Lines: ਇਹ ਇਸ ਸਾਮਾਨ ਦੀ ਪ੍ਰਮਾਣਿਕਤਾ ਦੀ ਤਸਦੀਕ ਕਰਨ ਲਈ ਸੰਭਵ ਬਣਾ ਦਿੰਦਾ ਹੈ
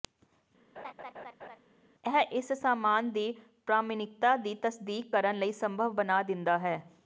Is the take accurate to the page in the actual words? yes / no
yes